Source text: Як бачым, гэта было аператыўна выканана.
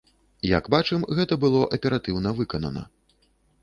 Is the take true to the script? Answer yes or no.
yes